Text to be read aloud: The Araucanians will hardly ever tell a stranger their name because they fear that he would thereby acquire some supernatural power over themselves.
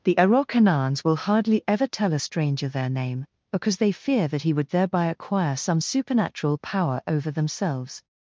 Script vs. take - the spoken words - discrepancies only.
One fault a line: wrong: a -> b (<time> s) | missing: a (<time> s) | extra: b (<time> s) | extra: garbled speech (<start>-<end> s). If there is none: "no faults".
no faults